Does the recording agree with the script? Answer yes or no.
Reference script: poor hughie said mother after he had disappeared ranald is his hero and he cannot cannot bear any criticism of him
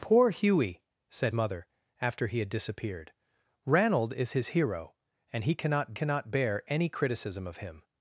yes